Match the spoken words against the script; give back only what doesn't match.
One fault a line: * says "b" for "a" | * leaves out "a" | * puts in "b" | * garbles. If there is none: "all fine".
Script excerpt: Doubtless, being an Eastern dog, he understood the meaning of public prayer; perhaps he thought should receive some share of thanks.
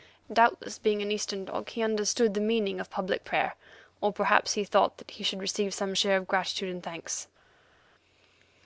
* puts in "or"
* puts in "that he"
* puts in "gratitude and"